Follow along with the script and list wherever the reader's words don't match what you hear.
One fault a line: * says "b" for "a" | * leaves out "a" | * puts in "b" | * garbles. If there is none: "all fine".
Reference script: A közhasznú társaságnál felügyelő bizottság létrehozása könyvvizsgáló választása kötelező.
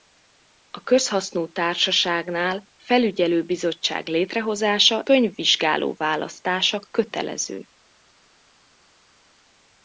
all fine